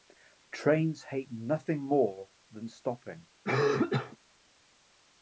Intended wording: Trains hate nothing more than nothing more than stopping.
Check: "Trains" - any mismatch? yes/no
no